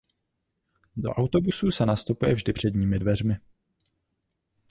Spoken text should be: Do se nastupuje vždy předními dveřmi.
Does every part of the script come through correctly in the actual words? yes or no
no